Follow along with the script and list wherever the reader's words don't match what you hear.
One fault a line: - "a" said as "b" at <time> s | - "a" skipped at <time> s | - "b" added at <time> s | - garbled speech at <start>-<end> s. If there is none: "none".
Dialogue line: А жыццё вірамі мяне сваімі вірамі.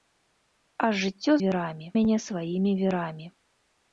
none